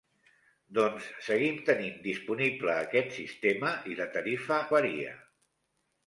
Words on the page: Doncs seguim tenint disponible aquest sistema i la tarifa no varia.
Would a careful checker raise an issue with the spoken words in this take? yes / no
yes